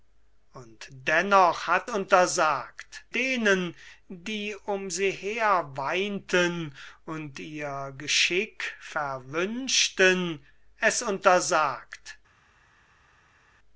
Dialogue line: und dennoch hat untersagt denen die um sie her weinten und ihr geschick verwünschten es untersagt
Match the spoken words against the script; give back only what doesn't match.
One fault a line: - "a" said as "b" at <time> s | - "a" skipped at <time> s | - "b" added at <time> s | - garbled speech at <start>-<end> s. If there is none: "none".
none